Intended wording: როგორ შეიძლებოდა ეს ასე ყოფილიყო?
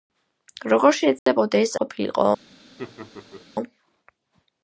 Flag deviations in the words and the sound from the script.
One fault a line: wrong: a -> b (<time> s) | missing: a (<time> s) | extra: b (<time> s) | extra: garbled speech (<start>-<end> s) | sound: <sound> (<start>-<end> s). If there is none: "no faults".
sound: dropout (1.2-1.3 s)
missing: ასე (1.8 s)
sound: laugh (2.8-3.5 s)